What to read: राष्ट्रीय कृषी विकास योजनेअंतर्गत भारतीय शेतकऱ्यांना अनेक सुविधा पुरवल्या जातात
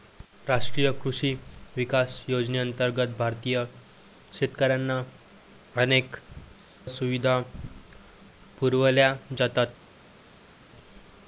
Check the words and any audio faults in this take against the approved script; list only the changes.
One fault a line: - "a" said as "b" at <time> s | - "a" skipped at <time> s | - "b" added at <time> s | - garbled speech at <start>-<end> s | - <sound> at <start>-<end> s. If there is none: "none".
none